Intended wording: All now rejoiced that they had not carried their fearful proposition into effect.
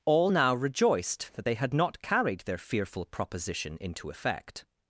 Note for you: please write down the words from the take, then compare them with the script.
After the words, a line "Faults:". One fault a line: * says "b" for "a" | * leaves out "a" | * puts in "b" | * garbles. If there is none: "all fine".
All now rejoiced that they had not carried their fearful proposition into effect.
Faults:
all fine